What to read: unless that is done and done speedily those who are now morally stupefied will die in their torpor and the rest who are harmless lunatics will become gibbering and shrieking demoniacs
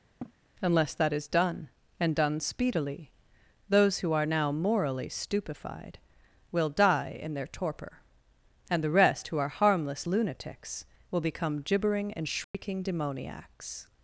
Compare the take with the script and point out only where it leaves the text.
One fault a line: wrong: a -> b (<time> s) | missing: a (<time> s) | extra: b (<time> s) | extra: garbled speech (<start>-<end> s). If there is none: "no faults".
no faults